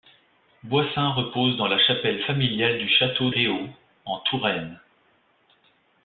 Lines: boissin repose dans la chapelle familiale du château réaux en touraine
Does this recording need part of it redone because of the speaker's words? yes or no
no